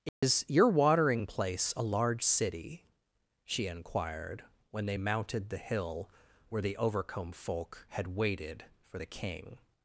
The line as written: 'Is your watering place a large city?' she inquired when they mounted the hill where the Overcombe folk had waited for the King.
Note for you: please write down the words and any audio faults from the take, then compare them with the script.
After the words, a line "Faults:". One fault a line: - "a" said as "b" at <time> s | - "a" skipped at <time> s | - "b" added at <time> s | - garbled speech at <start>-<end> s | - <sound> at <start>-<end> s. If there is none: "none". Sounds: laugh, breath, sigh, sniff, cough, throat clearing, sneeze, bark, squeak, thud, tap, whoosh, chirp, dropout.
'Is your watering place a large city?' she inquired when they mounted the hill where the Overcombe folk had waited for the King.
Faults:
- dropout at 0.1-0.2 s